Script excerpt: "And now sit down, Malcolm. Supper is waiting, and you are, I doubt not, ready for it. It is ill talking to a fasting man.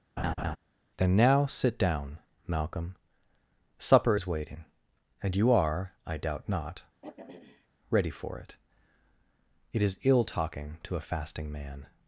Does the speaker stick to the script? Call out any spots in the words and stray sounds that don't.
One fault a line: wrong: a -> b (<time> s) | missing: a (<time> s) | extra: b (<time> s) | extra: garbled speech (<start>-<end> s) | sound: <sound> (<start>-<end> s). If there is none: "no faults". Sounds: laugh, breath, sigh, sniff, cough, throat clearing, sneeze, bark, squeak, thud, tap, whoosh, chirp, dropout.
sound: laugh (0.2-0.6 s)
wrong: And -> Then (1.0 s)
sound: throat clearing (7.0-7.7 s)